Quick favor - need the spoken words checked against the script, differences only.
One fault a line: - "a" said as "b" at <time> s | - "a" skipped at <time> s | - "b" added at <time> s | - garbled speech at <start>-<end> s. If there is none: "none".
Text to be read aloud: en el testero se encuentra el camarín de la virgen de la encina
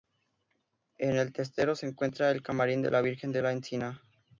none